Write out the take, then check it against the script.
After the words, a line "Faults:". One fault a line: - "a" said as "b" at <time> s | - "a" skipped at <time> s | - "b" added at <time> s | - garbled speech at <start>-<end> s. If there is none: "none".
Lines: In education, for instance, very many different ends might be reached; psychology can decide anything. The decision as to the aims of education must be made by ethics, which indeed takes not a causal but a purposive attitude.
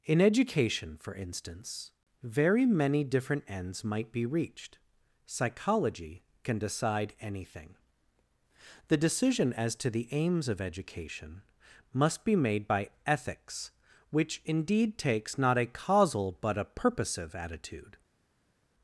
In education, for instance, very many different ends might be reached; psychology can decide anything. The decision as to the aims of education must be made by ethics, which indeed takes not a causal but a purposive attitude.
Faults:
none